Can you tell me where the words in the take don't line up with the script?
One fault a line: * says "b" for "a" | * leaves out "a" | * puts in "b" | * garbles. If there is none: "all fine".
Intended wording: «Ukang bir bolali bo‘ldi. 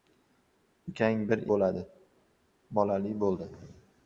all fine